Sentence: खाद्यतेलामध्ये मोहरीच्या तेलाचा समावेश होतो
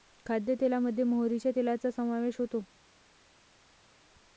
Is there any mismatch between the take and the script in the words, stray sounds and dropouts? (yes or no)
no